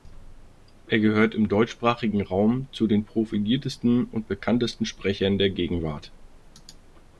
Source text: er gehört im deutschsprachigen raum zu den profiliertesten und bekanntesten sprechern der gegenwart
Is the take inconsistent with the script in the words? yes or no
no